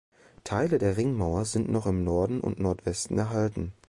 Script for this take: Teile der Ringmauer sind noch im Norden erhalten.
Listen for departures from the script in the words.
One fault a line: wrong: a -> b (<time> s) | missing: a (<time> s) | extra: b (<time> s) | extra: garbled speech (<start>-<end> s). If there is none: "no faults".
extra: und Nordwesten (2.4 s)